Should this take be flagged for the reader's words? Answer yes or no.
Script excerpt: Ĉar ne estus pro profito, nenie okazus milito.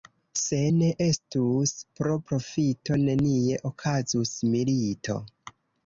yes